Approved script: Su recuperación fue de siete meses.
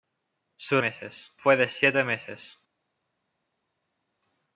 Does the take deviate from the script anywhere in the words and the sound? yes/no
yes